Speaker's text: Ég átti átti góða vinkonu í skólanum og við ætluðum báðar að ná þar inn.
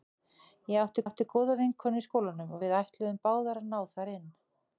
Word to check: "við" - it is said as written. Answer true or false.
true